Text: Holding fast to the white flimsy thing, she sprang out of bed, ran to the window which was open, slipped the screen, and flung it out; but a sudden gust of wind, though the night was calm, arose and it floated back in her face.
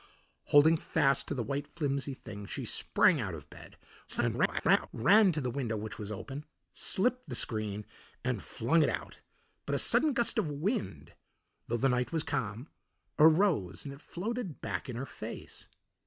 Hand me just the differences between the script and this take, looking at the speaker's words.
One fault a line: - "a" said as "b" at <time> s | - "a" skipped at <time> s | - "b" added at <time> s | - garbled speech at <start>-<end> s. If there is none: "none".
- garbled speech at 4.1-4.9 s